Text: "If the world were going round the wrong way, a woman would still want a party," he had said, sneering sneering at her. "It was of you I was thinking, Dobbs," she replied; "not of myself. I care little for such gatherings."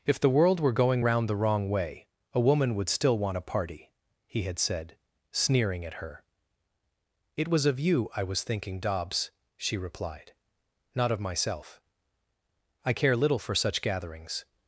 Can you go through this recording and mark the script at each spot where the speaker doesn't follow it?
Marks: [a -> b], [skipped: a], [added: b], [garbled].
"If the world were going round the wrong way, a woman would still want a party," he had said, sneering [skipped: sneering] at her. "It was of you I was thinking, Dobbs," she replied; "not of myself. I care little for such gatherings."